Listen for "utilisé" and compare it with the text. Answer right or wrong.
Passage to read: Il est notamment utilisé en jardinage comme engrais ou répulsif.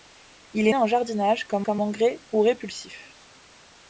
wrong